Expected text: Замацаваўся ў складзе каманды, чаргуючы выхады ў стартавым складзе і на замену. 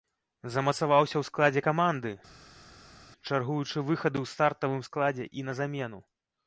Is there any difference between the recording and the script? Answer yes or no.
no